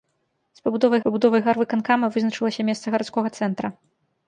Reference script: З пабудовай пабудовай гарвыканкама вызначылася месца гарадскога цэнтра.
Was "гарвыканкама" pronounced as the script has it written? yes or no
yes